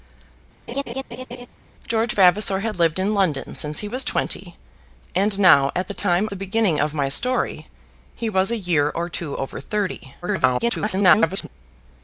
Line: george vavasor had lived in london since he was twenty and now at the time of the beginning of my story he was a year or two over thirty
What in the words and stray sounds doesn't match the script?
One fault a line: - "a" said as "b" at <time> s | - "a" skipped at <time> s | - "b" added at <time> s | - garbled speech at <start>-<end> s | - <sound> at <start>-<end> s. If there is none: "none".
- laugh at 0.7-1.5 s
- "of" skipped at 6.3 s
- garbled speech at 10.2-11.5 s